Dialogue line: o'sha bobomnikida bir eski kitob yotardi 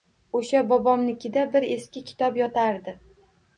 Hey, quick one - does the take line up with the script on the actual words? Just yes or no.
yes